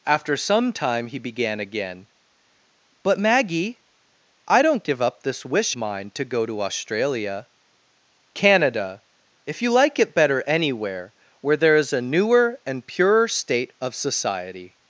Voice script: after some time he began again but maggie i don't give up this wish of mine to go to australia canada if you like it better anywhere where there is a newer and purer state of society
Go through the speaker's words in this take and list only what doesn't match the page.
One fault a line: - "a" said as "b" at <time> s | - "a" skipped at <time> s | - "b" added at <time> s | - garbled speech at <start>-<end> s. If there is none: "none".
- "of" skipped at 5.8 s